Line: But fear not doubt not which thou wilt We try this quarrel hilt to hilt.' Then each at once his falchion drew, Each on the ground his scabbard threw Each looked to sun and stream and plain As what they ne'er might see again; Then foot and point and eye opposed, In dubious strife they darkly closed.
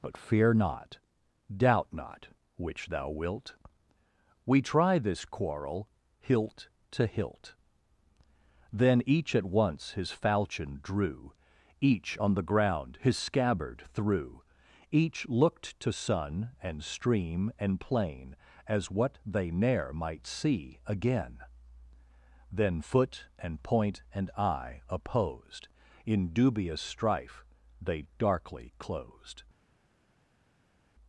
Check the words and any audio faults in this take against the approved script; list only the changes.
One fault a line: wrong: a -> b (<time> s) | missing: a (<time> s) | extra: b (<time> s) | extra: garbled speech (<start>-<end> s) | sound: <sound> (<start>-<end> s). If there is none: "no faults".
no faults